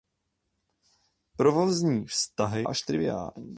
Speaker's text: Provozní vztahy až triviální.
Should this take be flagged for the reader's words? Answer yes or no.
no